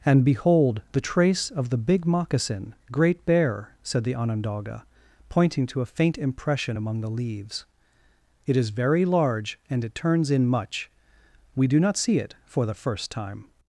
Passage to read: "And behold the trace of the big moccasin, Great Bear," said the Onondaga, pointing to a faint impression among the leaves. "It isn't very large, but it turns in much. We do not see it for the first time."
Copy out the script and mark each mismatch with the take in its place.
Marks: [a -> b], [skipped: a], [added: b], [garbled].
"And behold the trace of the big moccasin, Great Bear," said the Onondaga, pointing to a faint impression among the leaves. "It [isn't -> is] very large, [but -> and] it turns in much. We do not see it for the first time."